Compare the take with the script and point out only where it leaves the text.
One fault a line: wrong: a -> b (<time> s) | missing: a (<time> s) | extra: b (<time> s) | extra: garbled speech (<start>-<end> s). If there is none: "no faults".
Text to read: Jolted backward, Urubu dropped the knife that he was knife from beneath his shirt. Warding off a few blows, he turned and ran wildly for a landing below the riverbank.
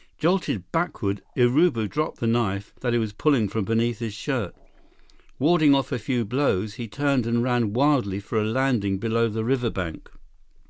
wrong: knife -> pulling (3.1 s)